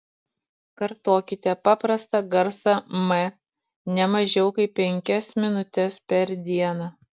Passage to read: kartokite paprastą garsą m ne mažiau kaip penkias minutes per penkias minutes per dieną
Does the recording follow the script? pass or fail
fail